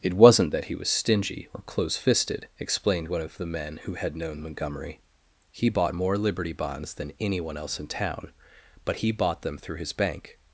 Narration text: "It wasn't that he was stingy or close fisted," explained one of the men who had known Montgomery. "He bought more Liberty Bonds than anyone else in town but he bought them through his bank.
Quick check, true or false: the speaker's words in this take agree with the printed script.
true